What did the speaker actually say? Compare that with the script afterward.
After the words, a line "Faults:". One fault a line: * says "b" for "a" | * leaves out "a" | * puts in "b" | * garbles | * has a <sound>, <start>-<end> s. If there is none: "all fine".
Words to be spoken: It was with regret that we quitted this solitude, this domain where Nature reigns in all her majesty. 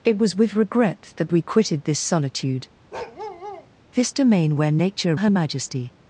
It was with regret that we quitted this solitude, this domain where Nature her majesty.
Faults:
* has a bark, 2.9-3.7 s
* leaves out "reigns in all"